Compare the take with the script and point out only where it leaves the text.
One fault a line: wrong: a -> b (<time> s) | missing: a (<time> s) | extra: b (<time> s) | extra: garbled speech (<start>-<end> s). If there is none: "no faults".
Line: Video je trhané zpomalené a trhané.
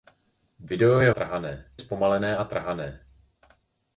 no faults